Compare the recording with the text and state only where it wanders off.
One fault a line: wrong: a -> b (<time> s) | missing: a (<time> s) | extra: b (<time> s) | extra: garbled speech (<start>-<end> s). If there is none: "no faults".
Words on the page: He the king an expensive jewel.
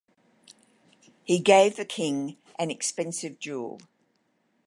extra: gave (1.4 s)